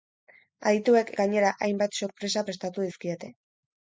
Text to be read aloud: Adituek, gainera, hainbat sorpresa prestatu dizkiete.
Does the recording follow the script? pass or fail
pass